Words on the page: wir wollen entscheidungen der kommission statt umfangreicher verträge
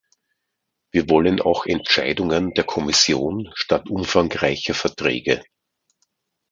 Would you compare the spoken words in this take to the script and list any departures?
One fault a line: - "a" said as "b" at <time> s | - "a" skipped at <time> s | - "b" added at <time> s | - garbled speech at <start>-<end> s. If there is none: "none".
- "auch" added at 1.4 s